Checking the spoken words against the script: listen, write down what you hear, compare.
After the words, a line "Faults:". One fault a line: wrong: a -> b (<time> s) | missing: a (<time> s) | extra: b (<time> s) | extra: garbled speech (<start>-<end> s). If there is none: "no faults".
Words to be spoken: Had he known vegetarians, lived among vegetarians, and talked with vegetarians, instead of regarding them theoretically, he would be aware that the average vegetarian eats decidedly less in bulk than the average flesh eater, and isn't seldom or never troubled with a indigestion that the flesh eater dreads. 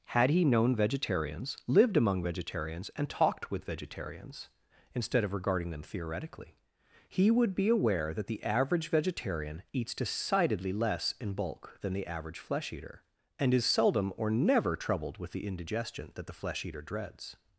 Had he known vegetarians, lived among vegetarians, and talked with vegetarians, instead of regarding them theoretically, he would be aware that the average vegetarian eats decidedly less in bulk than the average flesh eater, and is seldom or never troubled with the indigestion that the flesh eater dreads.
Faults:
wrong: isn't -> is (13.5 s)
wrong: a -> the (15.3 s)